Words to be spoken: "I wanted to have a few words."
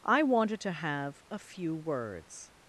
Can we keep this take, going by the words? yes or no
yes